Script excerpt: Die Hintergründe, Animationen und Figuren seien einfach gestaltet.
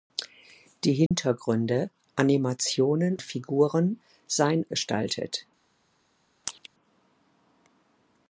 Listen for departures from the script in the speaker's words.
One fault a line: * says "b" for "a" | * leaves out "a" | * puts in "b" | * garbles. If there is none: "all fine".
* leaves out "und"
* leaves out "einfach"